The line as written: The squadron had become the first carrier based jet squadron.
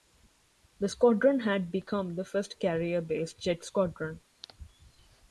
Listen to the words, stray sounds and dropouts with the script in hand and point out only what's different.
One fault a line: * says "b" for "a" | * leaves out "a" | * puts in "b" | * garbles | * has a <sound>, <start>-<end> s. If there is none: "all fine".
all fine